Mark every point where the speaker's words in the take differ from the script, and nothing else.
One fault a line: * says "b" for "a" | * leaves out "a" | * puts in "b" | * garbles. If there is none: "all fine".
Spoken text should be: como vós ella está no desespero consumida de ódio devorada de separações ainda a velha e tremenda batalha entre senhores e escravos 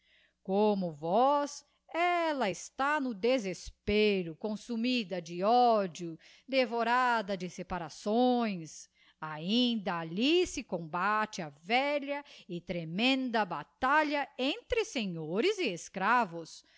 * puts in "alli se combate"